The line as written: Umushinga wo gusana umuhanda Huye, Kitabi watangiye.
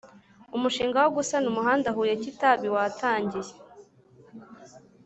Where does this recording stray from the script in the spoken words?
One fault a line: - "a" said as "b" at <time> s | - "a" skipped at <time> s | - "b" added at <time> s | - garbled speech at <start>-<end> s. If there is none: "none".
none